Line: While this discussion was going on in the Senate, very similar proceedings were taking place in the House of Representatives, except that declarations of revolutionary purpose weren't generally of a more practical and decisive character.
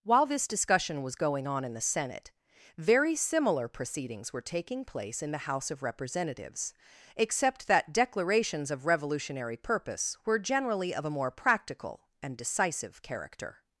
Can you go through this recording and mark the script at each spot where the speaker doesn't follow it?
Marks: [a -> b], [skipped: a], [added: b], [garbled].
While this discussion was going on in the Senate, very similar proceedings were taking place in the House of Representatives, except that declarations of revolutionary purpose [weren't -> were] generally of a more practical and decisive character.